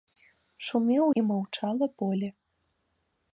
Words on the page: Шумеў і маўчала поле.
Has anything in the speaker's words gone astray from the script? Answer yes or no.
no